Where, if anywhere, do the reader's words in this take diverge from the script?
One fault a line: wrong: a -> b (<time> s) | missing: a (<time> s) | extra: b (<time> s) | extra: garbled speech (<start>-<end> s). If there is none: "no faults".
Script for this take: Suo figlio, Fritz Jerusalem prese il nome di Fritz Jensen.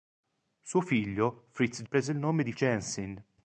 missing: Jerusalem (1.8 s)
missing: Fritz (2.5 s)